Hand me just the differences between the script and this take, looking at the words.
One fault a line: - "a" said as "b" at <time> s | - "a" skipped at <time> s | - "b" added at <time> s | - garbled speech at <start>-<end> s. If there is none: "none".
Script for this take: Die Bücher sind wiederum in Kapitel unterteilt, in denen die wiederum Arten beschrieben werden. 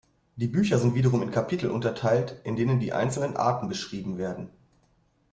- "wiederum" said as "einzelnen" at 2.9 s